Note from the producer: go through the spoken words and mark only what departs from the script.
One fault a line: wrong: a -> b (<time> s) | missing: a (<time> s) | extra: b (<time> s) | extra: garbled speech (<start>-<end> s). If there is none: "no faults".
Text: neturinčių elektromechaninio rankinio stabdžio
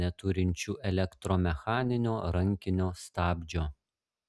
no faults